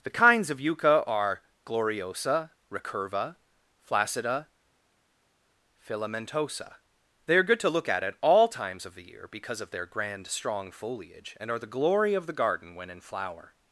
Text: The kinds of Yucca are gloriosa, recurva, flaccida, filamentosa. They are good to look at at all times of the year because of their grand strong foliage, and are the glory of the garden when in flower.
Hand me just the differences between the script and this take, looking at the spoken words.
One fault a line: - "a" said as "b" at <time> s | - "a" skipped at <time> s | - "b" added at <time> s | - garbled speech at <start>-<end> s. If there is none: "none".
none